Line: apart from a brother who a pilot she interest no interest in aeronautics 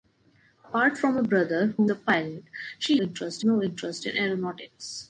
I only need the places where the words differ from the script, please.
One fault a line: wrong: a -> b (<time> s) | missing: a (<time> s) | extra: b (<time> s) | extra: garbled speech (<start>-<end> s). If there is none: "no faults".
no faults